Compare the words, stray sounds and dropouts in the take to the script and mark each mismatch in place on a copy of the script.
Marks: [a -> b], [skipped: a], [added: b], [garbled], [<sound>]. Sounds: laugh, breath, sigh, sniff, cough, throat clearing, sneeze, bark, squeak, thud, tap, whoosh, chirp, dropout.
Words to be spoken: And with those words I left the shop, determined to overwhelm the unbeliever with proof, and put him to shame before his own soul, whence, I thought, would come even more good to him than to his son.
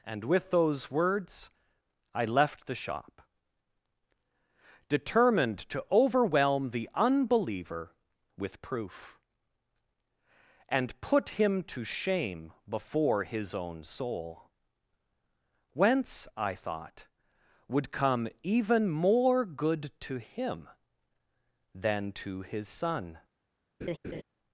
And with those words I left the shop, determined to overwhelm the unbeliever with proof, and put him to shame before his own soul, whence, I thought, would come even more good to him than to his son. [laugh]